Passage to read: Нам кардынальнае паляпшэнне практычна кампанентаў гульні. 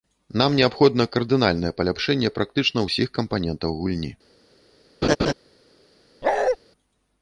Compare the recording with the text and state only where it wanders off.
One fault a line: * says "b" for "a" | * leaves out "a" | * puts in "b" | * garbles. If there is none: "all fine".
* puts in "неабходна"
* puts in "ўсіх"